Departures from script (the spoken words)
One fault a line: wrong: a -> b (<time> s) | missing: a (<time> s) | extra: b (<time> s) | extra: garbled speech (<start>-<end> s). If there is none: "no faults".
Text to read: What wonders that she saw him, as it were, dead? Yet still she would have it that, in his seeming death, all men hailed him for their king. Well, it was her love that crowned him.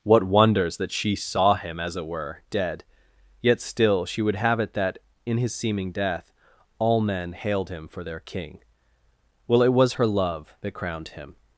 no faults